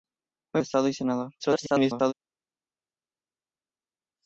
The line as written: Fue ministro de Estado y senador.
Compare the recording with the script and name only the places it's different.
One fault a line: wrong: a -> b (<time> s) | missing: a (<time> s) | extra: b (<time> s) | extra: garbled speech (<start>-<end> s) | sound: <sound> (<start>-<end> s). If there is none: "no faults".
missing: ministro (0.6 s)
extra: garbled speech (1.4-2.1 s)